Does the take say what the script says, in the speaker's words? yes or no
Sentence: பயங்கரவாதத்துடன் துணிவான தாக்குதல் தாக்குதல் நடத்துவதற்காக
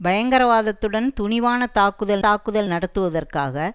yes